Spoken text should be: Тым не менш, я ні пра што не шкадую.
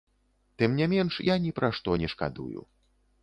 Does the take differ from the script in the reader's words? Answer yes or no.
no